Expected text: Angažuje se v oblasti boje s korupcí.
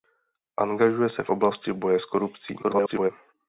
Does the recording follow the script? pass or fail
fail